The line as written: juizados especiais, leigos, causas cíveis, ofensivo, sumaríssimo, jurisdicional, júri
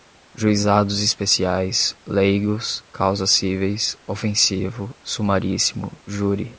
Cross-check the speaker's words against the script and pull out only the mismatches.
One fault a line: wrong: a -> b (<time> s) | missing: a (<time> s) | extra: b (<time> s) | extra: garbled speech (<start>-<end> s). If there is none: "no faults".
missing: jurisdicional (5.9 s)